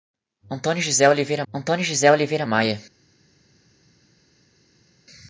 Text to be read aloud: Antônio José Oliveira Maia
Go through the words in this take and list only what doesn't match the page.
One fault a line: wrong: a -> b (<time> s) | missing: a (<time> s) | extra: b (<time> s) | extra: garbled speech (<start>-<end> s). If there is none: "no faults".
extra: antônio José Oliveira (1.5 s)